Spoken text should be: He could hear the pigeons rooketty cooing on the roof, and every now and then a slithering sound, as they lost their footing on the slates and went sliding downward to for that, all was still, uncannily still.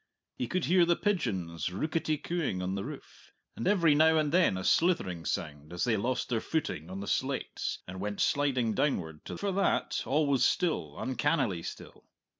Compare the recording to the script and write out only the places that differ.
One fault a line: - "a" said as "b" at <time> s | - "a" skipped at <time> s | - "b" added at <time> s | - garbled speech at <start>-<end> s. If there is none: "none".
none